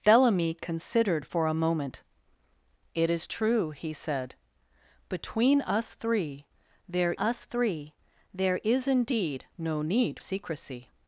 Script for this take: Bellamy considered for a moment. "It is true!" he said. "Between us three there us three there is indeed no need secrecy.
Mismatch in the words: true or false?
false